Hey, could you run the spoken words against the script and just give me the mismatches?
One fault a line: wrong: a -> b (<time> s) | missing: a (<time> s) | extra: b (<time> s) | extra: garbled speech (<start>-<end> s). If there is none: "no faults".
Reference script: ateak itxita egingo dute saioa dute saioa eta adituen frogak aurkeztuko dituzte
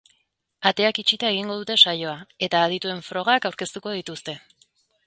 missing: dute saioa (2.2 s)